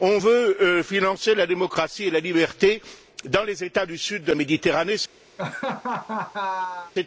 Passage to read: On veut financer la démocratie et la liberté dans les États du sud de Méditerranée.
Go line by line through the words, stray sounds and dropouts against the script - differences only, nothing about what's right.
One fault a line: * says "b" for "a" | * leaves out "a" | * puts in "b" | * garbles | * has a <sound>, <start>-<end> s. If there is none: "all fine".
* has a laugh, 5.4-6.9 s